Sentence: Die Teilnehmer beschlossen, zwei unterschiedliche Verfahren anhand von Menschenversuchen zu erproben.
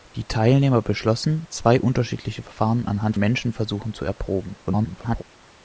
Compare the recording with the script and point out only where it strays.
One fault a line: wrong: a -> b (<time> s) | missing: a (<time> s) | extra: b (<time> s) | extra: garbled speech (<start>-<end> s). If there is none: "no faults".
missing: von (3.2 s)
extra: garbled speech (4.7-5.2 s)